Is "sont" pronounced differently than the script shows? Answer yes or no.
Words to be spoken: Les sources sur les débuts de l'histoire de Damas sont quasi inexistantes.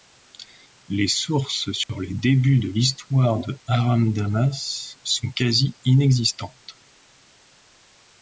no